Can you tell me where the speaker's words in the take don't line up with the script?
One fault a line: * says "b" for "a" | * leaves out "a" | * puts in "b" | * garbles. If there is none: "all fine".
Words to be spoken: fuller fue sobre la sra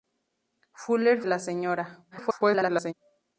* leaves out "fue sobre"
* garbles